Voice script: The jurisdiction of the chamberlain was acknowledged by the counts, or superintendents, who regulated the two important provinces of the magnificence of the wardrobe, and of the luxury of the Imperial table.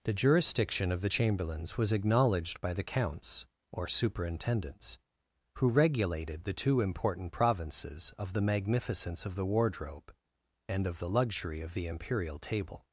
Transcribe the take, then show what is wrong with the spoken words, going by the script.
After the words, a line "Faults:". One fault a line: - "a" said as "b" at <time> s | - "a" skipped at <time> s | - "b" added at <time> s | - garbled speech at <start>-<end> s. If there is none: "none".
The jurisdiction of the chamberlains was acknowledged by the counts, or superintendents, who regulated the two important provinces of the magnificence of the wardrobe, and of the luxury of the Imperial table.
Faults:
- "chamberlain" said as "chamberlains" at 1.1 s